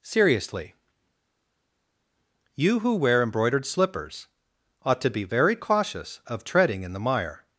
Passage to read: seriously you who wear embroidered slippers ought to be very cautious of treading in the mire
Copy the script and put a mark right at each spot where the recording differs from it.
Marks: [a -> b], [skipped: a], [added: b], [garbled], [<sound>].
seriously you who wear embroidered slippers ought to be very cautious of treading in the mire